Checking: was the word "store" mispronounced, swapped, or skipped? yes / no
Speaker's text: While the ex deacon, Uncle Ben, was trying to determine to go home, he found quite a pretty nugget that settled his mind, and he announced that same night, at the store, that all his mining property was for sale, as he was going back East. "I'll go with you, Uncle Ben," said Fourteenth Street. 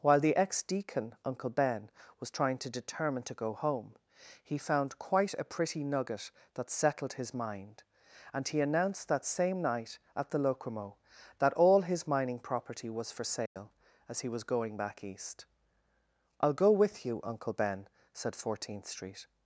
yes